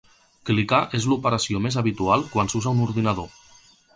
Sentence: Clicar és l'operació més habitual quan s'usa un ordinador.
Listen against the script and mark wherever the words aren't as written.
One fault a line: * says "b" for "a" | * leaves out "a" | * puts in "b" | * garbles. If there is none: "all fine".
all fine